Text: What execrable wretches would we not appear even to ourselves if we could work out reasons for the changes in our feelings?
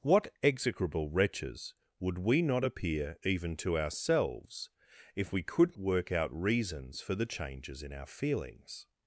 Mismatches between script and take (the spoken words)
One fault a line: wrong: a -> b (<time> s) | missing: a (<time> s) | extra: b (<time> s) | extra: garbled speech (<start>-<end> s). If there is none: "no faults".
no faults